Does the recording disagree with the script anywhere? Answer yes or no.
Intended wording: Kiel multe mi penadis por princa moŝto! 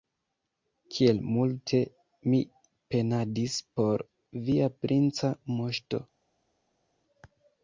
yes